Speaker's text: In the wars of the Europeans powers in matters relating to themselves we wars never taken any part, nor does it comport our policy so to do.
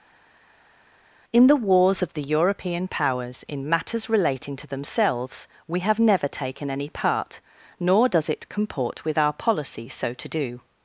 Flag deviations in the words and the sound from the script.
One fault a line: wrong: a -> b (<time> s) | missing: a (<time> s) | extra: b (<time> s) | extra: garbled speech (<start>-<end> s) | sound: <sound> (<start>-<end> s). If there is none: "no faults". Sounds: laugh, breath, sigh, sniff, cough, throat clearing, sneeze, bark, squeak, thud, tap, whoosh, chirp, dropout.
wrong: Europeans -> European (2.2 s)
wrong: wars -> have (5.8 s)
extra: with (9.0 s)